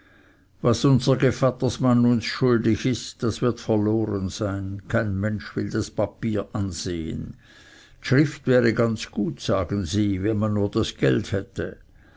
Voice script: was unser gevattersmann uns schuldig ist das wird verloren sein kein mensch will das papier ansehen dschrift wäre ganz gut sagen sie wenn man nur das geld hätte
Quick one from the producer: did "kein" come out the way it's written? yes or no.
yes